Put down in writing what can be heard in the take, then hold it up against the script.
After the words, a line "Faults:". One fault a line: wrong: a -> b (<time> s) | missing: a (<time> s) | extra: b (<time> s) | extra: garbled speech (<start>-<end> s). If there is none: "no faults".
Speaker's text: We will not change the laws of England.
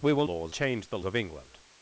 We will laws change the of England.
Faults:
wrong: not -> laws (0.2 s)
missing: laws (1.0 s)